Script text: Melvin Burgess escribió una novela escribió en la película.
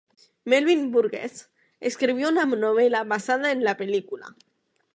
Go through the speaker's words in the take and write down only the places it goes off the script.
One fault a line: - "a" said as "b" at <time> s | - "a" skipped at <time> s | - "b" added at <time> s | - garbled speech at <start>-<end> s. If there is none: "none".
- "escribió" said as "basada" at 3.0 s